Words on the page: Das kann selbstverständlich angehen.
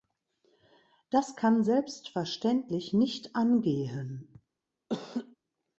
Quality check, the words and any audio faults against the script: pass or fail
fail